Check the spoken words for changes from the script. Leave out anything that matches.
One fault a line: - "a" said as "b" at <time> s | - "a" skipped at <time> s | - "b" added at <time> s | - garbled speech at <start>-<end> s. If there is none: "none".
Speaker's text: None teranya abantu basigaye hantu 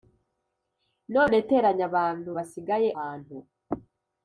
none